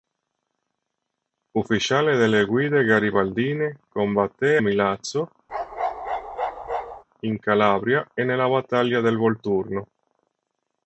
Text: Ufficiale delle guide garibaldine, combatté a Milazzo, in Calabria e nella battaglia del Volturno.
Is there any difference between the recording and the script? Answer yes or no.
yes